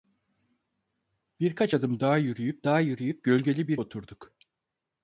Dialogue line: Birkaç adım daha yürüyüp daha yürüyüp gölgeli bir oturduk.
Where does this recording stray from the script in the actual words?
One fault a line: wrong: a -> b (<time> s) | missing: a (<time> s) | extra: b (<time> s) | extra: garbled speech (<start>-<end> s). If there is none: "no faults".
no faults